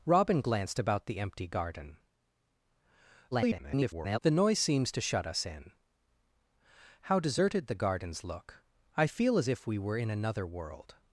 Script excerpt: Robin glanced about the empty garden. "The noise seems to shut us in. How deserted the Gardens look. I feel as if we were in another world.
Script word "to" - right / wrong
right